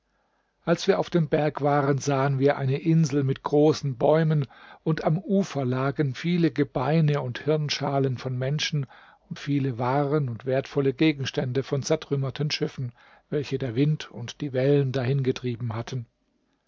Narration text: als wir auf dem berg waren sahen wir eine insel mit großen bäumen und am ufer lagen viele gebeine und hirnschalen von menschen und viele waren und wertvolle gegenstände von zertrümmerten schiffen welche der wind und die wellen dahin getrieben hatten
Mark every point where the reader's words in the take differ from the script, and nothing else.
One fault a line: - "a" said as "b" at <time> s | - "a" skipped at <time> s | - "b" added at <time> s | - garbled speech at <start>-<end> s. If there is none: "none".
none